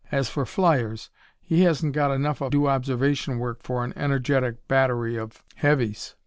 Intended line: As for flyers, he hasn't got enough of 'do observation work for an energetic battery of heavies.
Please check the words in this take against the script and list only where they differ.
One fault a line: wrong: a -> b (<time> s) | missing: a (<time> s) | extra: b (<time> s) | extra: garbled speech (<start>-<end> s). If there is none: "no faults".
no faults